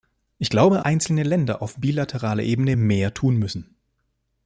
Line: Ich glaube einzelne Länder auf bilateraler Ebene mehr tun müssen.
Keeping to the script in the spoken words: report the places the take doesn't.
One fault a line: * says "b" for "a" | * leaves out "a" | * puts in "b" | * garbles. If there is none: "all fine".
all fine